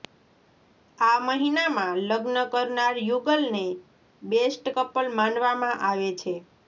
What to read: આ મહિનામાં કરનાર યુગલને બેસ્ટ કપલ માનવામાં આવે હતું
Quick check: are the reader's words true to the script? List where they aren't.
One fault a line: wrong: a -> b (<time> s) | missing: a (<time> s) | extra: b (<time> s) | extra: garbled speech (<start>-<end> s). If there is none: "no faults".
extra: લગ્ન (2.1 s)
wrong: હતું -> છે (6.2 s)